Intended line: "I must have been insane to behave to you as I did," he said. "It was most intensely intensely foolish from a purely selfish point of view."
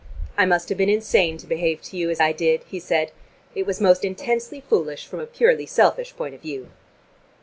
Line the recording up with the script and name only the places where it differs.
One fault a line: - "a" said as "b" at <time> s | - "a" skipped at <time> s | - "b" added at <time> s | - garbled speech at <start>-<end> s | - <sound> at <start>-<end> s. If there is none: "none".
- "intensely" skipped at 4.6 s